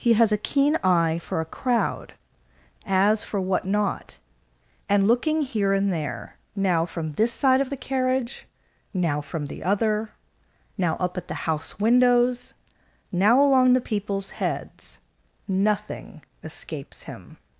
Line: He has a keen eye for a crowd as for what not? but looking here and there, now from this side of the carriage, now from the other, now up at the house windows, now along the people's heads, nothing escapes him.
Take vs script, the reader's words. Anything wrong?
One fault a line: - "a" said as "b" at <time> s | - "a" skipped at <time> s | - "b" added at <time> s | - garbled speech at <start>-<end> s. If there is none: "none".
- "but" said as "and" at 4.9 s